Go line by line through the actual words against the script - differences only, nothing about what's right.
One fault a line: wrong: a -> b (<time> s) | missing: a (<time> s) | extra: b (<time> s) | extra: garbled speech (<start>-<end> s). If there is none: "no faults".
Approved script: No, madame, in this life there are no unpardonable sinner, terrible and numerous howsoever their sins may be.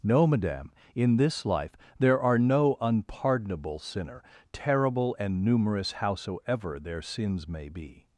no faults